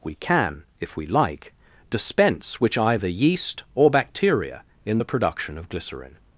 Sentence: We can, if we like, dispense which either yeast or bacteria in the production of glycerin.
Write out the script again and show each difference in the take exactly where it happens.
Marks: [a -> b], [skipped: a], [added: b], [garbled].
We can, if we like, dispense which either yeast or bacteria in the production of glycerin.